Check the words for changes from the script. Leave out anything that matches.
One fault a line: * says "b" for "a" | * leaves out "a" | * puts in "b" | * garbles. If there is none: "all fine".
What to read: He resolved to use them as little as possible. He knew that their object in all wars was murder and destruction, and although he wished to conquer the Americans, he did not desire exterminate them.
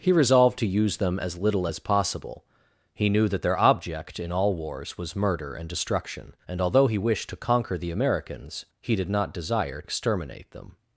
all fine